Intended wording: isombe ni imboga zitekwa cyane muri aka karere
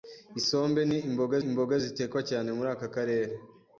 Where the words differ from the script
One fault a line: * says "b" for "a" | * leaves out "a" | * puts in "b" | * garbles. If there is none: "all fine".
* puts in "imboga"